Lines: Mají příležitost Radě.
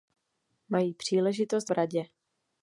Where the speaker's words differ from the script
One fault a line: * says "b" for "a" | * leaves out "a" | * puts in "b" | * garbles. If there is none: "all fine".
all fine